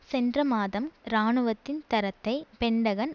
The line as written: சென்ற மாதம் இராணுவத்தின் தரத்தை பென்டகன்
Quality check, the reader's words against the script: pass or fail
pass